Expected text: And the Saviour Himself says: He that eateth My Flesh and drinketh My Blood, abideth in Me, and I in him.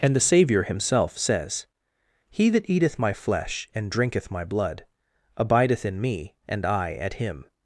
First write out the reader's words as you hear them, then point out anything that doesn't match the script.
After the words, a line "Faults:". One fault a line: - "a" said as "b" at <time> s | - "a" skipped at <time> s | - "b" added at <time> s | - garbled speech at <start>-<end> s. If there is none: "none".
And the Saviour Himself says: He that eateth My Flesh and drinketh My Blood, abideth in Me, and I at him.
Faults:
- "in" said as "at" at 6.9 s